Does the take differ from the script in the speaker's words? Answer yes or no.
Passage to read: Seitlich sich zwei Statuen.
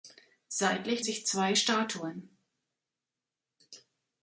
no